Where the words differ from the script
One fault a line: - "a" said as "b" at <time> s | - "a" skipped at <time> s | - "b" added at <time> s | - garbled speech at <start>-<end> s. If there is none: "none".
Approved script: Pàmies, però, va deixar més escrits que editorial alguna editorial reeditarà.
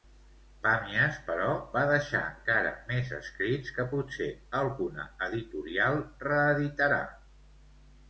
- "encara" added at 2.3 s
- "editorial" said as "potser" at 3.9 s